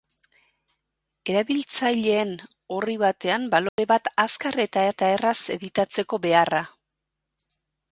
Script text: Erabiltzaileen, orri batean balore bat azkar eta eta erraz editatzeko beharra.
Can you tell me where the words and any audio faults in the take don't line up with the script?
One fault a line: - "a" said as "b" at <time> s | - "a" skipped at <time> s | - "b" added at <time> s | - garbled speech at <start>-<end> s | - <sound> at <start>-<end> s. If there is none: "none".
- dropout at 3.7-3.8 s